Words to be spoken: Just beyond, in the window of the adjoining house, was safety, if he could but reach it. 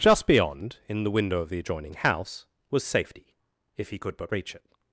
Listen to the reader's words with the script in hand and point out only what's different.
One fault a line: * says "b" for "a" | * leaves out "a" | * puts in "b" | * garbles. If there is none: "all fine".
all fine